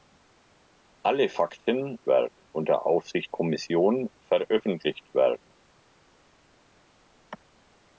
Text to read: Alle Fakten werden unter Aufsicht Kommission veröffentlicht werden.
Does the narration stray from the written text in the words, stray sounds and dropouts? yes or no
no